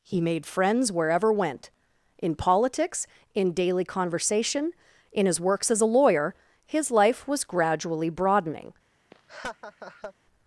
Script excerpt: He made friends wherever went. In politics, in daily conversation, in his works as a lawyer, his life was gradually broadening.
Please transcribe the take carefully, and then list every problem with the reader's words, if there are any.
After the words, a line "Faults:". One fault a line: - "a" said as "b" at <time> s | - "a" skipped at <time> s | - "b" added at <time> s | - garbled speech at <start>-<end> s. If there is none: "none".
He made friends wherever went. In politics, in daily conversation, in his works as a lawyer, his life was gradually broadening.
Faults:
none